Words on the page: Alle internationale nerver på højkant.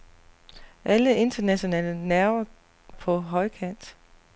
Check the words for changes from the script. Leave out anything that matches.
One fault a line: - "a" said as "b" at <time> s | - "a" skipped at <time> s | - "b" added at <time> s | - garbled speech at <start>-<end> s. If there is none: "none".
none